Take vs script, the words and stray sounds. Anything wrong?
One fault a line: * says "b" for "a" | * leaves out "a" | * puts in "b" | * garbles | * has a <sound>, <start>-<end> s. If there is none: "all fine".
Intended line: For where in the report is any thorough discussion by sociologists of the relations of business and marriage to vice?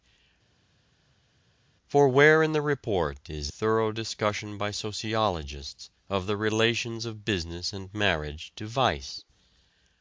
* leaves out "any"